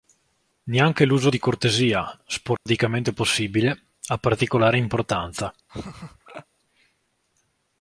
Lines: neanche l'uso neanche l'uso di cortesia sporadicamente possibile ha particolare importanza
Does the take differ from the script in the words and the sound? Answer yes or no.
yes